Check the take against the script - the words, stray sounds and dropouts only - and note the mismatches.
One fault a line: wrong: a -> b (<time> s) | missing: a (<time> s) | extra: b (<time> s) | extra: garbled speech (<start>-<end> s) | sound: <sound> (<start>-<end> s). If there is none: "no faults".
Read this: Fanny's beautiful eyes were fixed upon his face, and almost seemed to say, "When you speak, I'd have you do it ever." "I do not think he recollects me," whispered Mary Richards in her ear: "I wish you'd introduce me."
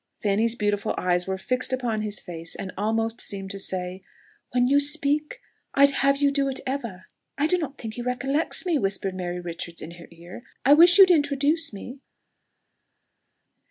no faults